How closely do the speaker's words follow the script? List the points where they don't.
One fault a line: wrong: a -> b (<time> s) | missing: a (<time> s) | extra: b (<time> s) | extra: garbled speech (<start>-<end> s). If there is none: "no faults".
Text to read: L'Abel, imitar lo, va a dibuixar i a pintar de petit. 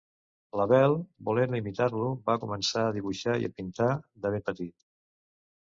extra: volent (1.3 s)
extra: començar (2.4 s)
extra: ben (4.4 s)